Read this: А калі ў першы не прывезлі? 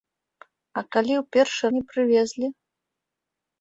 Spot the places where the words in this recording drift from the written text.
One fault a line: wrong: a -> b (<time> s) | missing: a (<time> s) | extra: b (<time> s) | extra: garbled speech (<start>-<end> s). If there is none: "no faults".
no faults